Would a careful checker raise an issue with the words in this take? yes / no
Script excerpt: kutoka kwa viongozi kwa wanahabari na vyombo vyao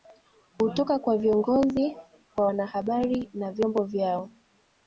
no